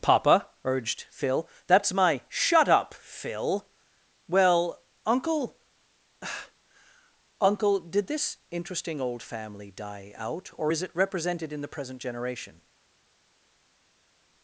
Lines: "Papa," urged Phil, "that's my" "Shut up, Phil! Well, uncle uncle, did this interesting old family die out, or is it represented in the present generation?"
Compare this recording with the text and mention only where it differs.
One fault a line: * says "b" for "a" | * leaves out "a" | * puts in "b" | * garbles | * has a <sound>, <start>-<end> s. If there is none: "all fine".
all fine